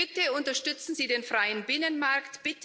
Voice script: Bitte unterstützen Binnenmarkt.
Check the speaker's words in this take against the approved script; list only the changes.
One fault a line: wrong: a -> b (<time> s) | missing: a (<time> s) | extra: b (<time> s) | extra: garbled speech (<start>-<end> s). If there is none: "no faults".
extra: Sie den freien (0.9 s)